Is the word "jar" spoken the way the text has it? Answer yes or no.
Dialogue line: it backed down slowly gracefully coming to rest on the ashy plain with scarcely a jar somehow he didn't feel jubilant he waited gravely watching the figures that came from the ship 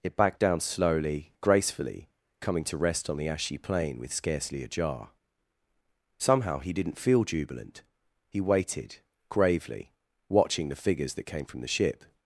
yes